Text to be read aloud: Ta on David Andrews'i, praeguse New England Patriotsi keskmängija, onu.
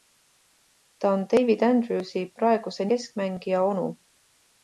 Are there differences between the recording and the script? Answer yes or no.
yes